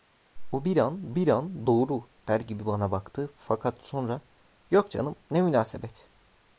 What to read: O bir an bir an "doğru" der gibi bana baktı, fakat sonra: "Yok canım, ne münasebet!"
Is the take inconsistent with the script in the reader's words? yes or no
no